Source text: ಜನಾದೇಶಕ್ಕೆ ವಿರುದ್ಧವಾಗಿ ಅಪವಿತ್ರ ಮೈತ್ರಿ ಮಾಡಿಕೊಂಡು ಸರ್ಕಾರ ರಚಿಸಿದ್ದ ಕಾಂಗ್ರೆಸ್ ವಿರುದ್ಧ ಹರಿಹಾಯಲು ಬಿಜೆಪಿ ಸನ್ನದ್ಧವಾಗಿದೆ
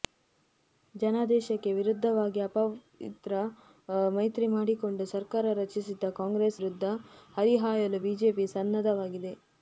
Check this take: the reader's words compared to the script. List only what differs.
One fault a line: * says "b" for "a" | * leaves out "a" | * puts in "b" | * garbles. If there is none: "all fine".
all fine